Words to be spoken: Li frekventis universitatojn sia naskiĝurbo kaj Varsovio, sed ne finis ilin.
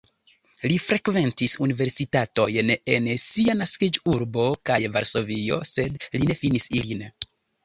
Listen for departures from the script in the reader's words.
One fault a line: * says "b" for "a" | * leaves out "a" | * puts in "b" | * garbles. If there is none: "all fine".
* puts in "en"
* puts in "li"